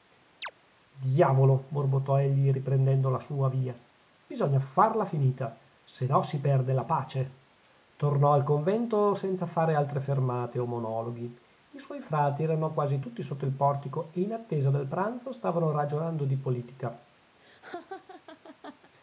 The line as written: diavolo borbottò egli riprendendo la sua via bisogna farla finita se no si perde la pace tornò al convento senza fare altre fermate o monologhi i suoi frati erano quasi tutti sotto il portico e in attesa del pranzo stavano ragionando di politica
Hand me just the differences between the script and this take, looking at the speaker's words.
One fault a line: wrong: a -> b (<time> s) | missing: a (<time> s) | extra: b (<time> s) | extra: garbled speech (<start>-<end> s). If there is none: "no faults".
no faults